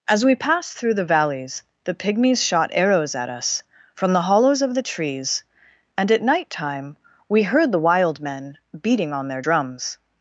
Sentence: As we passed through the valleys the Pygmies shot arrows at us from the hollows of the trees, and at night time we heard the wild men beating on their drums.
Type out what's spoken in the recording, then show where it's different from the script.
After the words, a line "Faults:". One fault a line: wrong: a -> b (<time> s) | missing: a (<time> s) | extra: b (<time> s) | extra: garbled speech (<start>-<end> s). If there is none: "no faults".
As we passed through the valleys the Pygmies shot arrows at us from the hollows of the trees, and at night time we heard the wild men beating on their drums.
Faults:
no faults